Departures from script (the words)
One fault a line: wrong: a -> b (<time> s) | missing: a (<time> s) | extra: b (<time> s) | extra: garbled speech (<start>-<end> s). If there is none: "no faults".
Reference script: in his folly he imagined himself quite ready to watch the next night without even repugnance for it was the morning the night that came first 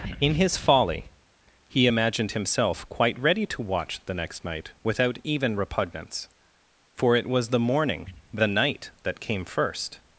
no faults